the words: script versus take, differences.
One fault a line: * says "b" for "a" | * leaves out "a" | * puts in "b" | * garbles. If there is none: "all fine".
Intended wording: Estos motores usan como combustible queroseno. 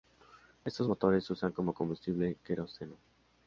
all fine